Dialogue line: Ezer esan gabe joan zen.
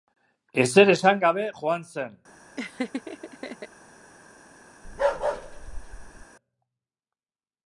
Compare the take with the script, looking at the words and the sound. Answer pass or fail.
fail